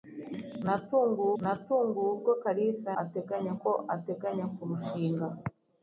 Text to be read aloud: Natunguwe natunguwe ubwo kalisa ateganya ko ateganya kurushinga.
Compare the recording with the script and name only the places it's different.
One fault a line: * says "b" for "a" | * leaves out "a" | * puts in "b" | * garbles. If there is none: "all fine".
all fine